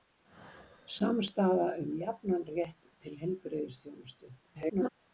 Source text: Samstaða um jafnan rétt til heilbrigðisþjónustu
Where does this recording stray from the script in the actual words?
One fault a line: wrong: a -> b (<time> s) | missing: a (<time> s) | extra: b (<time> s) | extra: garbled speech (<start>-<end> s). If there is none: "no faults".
extra: garbled speech (4.4-4.9 s)